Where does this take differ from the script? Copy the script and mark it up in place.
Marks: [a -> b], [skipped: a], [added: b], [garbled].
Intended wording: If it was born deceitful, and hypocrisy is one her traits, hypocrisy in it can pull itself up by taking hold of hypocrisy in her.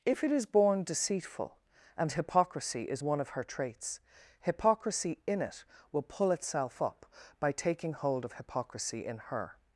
If it [was -> is] born deceitful, and hypocrisy is one [added: of] her traits, hypocrisy in it [can -> will] pull itself up by taking hold of hypocrisy in her.